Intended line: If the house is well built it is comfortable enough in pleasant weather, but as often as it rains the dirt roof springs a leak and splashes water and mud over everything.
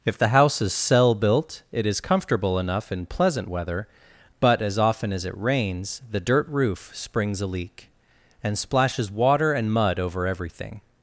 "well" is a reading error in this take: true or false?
true